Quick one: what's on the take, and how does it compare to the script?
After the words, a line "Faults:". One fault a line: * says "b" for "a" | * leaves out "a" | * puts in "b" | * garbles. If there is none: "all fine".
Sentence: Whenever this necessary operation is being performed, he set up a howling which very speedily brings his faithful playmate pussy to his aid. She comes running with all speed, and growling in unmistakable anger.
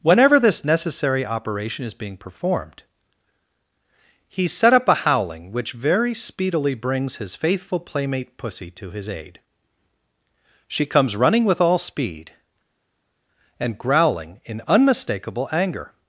Whenever this necessary operation is being performed, he set up a howling which very speedily brings his faithful playmate pussy to his aid. She comes running with all speed, and growling in unmistakable anger.
Faults:
all fine